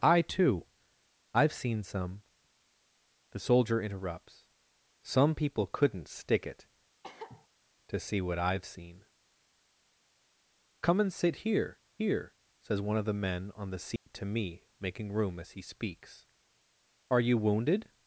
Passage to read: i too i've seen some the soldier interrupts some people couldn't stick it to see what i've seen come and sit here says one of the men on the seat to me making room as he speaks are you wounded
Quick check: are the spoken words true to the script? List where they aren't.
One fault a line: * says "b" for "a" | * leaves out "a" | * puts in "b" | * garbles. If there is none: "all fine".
* puts in "here"